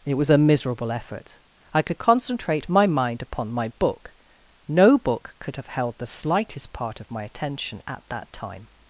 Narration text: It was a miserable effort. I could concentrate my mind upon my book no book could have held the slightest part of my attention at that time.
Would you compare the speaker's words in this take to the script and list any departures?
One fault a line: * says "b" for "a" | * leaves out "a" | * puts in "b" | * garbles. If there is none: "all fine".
all fine